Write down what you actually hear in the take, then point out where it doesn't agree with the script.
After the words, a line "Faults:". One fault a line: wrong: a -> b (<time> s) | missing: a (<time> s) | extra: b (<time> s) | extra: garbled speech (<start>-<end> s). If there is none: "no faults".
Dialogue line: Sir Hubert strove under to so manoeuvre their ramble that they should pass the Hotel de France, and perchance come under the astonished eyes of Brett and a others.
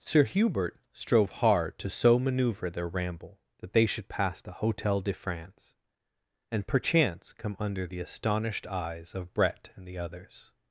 Sir Hubert strove hard to so manoeuvre their ramble that they should pass the Hotel de France, and perchance come under the astonished eyes of Brett and the others.
Faults:
wrong: under -> hard (1.3 s)
wrong: a -> the (9.9 s)